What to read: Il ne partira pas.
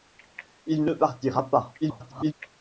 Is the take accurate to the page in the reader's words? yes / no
no